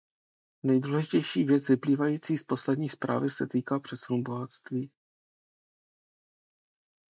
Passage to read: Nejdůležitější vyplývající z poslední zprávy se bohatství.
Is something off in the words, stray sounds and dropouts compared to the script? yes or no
yes